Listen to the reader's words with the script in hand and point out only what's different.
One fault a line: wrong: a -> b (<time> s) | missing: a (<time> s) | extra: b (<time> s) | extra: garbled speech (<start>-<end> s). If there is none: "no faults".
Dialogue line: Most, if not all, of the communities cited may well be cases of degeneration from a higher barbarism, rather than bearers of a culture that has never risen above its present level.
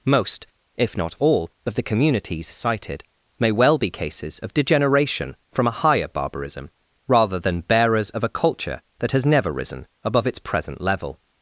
no faults